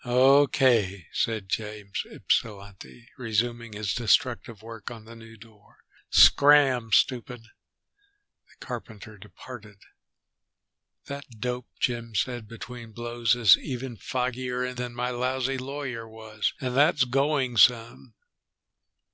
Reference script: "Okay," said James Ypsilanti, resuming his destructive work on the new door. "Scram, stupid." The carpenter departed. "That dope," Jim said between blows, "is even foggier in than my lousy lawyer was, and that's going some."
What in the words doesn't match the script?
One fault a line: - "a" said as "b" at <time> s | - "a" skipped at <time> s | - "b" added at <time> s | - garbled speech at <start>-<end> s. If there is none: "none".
none